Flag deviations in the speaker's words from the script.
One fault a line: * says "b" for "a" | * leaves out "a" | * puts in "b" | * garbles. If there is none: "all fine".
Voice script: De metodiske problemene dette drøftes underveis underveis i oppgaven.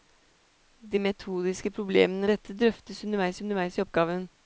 all fine